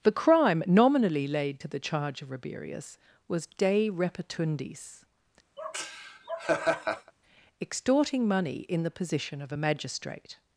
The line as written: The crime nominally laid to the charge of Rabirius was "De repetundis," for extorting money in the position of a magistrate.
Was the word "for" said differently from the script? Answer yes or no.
yes